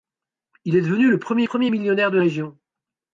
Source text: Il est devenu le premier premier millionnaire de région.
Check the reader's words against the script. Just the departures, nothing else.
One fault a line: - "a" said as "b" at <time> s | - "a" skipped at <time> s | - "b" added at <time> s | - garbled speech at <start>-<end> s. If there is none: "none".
none